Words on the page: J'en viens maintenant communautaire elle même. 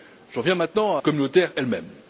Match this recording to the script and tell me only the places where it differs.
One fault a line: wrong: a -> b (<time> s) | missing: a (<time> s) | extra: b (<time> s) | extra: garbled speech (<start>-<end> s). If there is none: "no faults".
no faults